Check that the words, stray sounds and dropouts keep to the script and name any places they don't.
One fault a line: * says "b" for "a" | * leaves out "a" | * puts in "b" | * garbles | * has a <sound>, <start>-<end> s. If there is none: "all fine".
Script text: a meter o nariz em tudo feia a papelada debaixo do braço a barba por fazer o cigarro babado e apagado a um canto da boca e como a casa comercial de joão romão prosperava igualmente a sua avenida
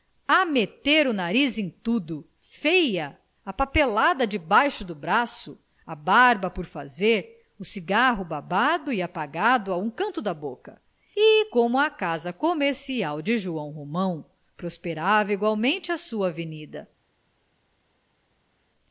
all fine